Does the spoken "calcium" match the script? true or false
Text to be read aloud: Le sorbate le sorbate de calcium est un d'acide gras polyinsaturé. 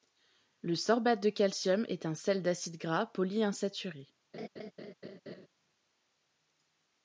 true